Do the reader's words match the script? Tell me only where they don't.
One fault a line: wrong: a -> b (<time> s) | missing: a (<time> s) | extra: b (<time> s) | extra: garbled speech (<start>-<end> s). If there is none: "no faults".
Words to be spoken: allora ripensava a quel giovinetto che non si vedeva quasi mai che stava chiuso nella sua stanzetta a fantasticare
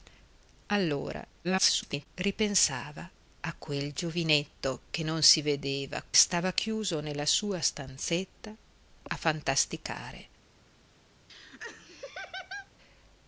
extra: garbled speech (1.4-2.1 s)
missing: quasi mai che (6.0 s)